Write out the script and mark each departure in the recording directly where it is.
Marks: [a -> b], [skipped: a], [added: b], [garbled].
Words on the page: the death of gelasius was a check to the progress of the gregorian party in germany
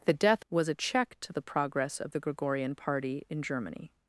the death [skipped: of gelasius] was a check to the progress of the gregorian party in germany